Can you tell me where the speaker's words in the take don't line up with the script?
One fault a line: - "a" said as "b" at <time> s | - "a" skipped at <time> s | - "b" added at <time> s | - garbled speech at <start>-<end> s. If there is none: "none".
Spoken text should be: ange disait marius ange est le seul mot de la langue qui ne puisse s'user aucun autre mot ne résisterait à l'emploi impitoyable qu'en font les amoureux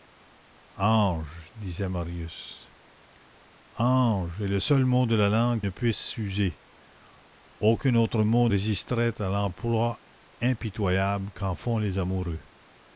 - "qui" skipped at 5.6 s
- "ne" skipped at 8.5 s